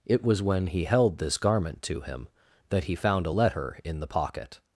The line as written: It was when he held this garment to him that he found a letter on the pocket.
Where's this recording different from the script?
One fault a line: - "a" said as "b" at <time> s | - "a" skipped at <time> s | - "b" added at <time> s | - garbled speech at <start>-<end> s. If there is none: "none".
- "on" said as "in" at 3.8 s